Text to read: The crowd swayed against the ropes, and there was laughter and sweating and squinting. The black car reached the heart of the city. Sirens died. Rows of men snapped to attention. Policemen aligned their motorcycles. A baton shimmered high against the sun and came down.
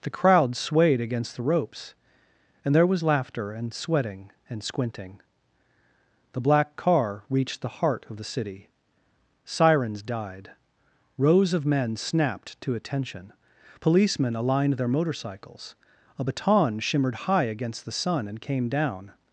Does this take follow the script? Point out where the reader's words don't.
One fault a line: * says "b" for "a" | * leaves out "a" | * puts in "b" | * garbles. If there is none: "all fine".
all fine